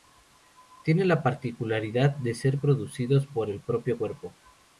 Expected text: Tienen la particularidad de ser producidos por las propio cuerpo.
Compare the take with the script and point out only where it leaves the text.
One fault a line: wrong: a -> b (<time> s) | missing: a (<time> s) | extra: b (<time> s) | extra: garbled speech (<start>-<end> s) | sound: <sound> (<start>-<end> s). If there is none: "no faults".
wrong: las -> el (3.5 s)